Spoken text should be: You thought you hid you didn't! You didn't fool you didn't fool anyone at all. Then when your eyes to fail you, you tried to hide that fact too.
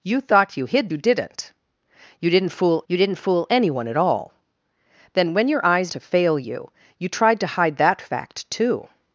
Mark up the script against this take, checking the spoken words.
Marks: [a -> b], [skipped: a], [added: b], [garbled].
You thought you hid you didn't! You didn't fool you didn't fool anyone at all. Then when your eyes to fail you, you tried to hide that fact too.